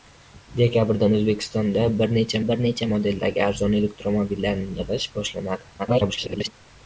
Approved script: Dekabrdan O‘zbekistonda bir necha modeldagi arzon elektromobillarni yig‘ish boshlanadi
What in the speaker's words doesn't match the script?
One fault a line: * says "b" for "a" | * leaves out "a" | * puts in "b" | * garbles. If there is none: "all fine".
* puts in "bir necha"
* garbles